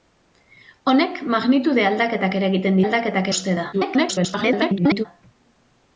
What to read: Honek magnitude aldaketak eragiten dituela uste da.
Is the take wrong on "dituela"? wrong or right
wrong